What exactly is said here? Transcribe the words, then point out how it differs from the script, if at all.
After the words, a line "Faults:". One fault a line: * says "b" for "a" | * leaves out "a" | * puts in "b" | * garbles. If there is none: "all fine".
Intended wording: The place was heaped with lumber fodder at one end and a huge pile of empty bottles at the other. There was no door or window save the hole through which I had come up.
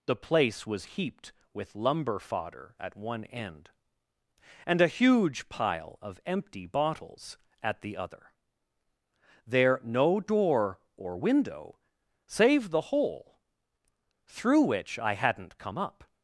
The place was heaped with lumber fodder at one end and a huge pile of empty bottles at the other. There no door or window save the hole through which I hadn't come up.
Faults:
* leaves out "was"
* says "hadn't" for "had"